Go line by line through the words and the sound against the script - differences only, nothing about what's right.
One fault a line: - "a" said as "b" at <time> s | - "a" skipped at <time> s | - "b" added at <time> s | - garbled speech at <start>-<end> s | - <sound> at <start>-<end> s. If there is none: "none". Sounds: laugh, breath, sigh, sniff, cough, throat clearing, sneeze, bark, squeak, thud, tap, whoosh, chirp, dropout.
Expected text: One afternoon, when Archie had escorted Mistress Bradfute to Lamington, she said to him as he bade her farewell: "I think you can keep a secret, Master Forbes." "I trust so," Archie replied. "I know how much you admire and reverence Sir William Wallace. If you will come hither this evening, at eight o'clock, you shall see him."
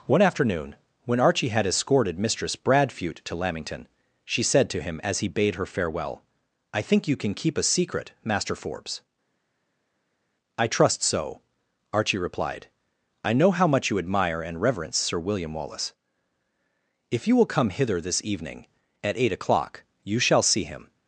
none